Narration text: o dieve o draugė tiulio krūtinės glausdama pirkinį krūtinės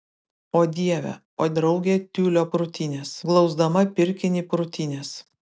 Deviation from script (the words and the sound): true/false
false